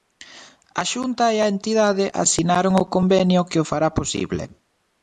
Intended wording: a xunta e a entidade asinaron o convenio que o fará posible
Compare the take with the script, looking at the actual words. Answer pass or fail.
pass